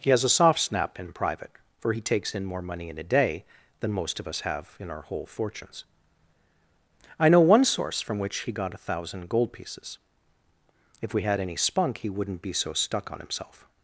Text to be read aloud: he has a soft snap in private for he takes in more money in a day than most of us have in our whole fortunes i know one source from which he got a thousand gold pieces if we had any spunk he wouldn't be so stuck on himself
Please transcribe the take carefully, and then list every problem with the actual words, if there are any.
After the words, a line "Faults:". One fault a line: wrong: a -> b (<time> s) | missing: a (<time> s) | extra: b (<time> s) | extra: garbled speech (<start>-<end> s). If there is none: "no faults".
he has a soft snap in private for he takes in more money in a day than most of us have in our whole fortunes i know one source from which he got a thousand gold pieces if we had any spunk he wouldn't be so stuck on himself
Faults:
no faults